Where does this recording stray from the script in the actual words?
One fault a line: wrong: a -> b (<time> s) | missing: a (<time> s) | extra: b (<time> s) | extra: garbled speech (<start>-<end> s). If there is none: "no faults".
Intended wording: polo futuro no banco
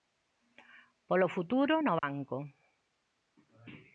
no faults